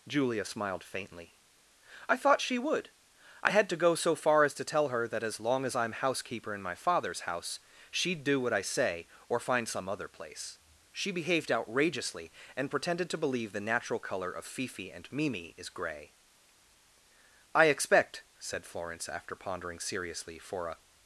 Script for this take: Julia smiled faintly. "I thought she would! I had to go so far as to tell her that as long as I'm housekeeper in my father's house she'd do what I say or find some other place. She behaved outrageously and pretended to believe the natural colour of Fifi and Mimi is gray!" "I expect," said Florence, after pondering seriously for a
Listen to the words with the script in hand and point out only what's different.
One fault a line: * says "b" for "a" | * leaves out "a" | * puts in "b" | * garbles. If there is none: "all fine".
all fine